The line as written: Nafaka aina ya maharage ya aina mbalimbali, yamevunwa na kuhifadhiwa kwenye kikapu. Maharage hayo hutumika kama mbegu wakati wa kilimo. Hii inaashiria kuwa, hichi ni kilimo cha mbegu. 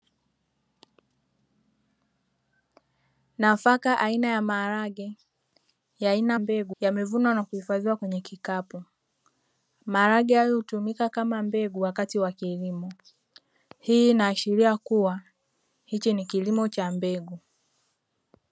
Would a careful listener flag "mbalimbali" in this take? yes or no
yes